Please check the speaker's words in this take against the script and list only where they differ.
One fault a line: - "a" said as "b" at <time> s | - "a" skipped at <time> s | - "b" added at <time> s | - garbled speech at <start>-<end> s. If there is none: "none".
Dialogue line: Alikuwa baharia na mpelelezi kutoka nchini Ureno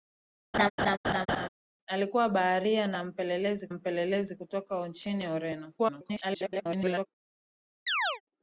- "mpelelezi" added at 3.7 s
- garbled speech at 5.8-7.1 s